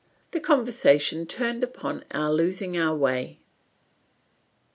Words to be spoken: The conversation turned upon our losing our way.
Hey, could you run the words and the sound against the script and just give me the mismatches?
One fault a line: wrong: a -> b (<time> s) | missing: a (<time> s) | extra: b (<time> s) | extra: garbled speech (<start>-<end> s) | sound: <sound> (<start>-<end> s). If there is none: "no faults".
no faults